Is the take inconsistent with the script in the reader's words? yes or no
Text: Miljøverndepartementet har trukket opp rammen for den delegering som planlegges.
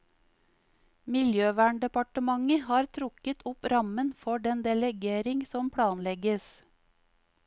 no